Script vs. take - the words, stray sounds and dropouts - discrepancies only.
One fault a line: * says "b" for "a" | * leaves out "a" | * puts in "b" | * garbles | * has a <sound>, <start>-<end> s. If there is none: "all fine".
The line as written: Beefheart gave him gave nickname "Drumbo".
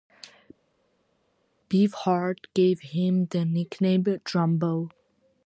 * says "the" for "gave"